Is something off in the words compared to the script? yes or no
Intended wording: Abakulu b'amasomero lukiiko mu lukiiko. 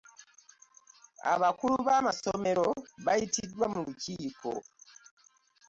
yes